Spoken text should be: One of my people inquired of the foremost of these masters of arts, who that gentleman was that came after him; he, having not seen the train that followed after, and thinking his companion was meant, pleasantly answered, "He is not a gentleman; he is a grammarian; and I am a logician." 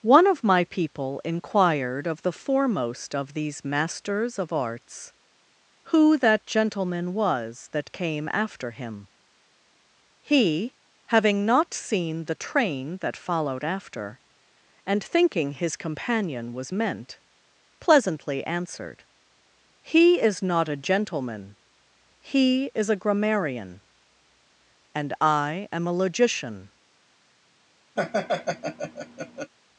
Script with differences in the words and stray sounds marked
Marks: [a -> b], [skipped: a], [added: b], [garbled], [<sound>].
One of my people inquired of the foremost of these masters of arts, who that gentleman was that came after him; he, having not seen the train that followed after, and thinking his companion was meant, pleasantly answered, "He is not a gentleman; he is a grammarian; and I am a logician." [laugh]